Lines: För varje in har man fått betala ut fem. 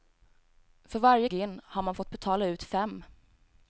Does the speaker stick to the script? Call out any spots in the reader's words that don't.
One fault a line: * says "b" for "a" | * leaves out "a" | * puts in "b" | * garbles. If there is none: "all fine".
all fine